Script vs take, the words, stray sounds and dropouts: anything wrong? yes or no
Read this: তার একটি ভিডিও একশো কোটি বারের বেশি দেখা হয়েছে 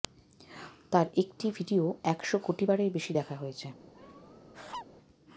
yes